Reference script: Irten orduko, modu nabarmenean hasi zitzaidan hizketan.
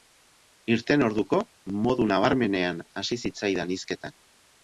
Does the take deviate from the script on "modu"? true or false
false